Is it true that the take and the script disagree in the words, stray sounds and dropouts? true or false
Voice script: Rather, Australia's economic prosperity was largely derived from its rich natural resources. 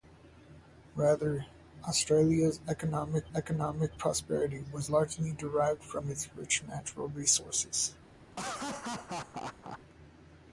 true